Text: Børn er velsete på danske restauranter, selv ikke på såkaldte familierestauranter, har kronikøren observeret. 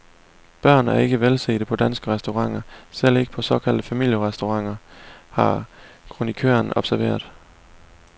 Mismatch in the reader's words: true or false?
true